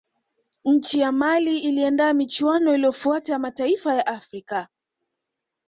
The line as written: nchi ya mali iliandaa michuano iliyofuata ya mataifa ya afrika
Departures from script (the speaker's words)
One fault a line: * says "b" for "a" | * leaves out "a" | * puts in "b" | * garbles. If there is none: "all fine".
all fine